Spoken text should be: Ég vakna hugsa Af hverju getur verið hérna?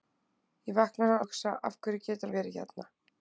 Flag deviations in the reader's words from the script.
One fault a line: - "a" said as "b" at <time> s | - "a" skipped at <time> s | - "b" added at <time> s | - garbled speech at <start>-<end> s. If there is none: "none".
none